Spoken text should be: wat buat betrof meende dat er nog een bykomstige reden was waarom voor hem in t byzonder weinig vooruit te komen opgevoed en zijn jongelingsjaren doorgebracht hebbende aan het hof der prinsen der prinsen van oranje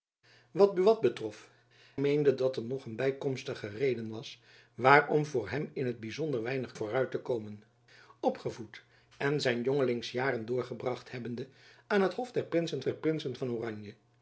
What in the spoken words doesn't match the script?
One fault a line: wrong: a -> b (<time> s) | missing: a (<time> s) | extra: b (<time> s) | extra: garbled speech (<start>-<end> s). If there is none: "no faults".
no faults